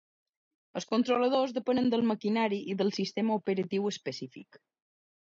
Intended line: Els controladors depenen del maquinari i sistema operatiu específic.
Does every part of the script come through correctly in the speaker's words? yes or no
no